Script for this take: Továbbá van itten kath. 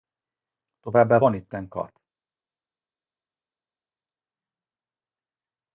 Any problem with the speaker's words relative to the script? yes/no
no